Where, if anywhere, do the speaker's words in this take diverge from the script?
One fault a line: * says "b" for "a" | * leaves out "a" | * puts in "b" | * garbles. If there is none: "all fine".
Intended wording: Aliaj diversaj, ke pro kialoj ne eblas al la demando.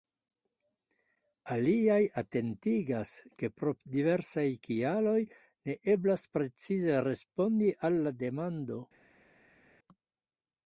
* says "atentigas" for "diversaj"
* puts in "diversaj"
* puts in "precize respondi"